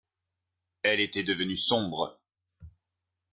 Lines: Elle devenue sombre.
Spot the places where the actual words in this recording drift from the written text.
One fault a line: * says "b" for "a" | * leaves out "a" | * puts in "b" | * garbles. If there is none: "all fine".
* puts in "était"